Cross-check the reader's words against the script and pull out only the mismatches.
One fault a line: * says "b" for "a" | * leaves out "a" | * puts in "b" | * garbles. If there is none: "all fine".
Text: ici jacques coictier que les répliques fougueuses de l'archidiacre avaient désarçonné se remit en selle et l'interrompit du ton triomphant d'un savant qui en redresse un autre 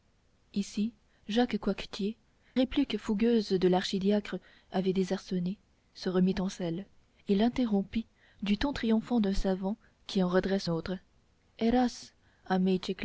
* leaves out "que les"
* leaves out "un"